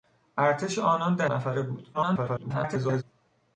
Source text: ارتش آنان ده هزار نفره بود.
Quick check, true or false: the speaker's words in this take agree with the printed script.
false